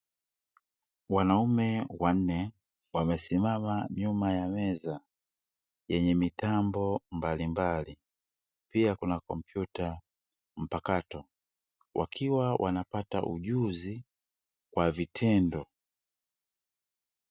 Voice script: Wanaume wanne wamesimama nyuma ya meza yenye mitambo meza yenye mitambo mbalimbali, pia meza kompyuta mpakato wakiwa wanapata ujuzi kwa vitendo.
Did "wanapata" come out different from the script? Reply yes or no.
no